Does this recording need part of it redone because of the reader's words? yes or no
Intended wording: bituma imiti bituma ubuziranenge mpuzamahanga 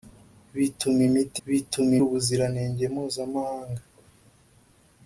no